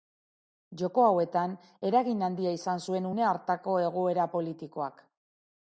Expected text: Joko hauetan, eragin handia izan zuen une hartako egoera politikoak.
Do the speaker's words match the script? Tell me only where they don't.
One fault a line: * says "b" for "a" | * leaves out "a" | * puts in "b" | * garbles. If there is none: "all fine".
all fine